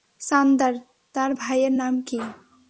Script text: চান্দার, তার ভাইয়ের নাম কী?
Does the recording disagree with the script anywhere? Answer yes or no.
no